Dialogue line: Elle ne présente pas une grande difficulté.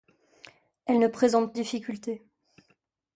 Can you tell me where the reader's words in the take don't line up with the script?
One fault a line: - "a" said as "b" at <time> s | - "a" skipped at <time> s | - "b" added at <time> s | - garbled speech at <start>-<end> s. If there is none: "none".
- "pas une grande" skipped at 1.5 s